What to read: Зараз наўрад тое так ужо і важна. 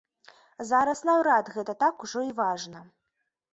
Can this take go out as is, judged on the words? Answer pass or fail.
fail